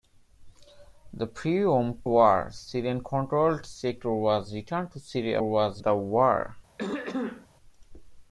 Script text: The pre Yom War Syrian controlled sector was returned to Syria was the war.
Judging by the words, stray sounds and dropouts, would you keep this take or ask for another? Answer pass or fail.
fail